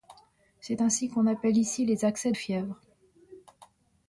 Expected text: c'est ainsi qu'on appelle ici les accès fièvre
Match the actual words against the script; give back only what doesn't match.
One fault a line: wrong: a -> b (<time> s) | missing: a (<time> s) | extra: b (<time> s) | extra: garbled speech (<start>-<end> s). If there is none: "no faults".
no faults